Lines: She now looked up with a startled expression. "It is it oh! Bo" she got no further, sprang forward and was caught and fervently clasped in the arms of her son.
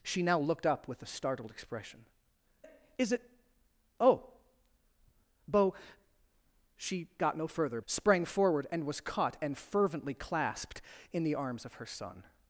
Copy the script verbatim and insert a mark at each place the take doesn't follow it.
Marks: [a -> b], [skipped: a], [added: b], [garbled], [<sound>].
She now looked up with a startled expression. "It is it oh! Bo" she got no further, sprang forward and was caught and fervently clasped in the arms of her son.